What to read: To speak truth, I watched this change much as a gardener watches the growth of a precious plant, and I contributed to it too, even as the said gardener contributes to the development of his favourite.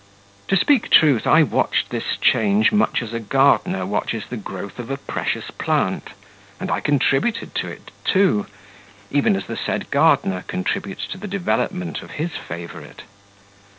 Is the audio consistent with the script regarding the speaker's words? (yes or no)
yes